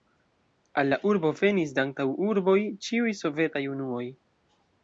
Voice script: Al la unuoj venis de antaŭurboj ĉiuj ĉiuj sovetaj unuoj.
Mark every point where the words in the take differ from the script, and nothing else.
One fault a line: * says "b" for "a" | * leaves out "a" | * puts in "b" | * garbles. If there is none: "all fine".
* says "urbo" for "unuoj"
* leaves out "ĉiuj"